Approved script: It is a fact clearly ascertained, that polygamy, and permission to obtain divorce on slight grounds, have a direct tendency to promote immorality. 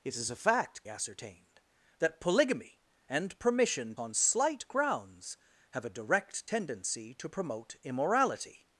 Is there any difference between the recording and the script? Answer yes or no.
yes